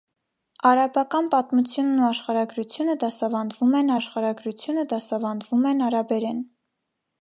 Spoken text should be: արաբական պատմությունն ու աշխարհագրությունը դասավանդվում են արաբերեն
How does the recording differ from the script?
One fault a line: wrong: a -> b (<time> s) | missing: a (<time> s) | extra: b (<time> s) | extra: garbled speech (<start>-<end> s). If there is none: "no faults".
extra: աշխարհագրությունը դասավանդվում են (3.9 s)